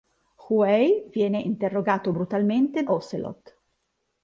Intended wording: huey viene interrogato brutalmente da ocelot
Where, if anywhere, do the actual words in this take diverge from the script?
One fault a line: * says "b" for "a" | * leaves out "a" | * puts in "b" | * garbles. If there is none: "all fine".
* leaves out "da"